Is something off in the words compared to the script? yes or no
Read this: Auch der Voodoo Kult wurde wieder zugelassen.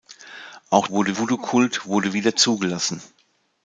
yes